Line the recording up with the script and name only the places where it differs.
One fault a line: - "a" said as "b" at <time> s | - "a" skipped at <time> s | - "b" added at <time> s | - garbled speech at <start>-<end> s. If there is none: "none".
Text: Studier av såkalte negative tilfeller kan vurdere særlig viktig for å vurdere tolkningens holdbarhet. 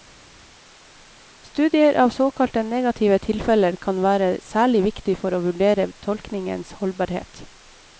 - "vurdere" said as "være" at 4.1 s